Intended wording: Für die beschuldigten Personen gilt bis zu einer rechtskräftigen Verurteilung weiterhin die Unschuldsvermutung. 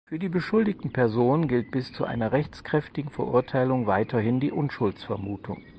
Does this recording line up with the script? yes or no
yes